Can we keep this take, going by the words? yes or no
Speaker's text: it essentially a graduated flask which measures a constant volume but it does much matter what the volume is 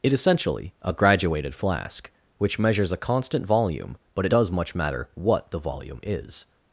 yes